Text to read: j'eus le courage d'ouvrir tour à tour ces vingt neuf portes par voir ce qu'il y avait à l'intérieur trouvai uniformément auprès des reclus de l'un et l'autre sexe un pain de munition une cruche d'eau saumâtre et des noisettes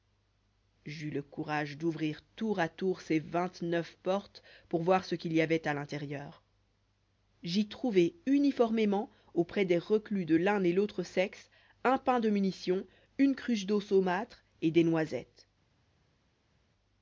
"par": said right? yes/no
no